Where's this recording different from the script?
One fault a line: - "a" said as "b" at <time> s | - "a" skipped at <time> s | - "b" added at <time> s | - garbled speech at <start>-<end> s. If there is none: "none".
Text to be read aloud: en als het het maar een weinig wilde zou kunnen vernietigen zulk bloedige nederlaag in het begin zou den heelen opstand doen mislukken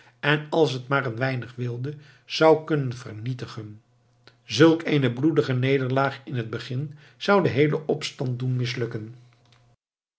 - "het" skipped at 0.9 s
- "eene" added at 4.8 s